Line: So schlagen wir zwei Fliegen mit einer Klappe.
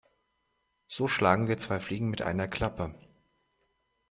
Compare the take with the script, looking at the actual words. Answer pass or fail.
pass